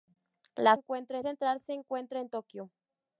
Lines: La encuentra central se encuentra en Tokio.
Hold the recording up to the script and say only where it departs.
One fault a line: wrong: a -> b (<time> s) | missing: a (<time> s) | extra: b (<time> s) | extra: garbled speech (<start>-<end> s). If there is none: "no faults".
no faults